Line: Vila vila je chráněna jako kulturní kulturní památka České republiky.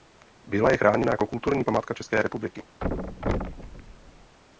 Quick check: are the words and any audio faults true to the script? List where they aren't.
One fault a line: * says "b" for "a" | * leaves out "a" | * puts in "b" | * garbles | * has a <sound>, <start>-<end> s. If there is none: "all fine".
* leaves out "vila"
* leaves out "kulturní"
* has a thud, 2.8-4.4 s